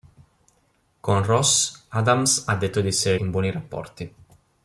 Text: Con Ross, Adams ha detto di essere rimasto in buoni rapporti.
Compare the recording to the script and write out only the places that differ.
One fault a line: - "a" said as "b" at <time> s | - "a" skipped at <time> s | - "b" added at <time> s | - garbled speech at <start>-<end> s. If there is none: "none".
- "rimasto" skipped at 3.2 s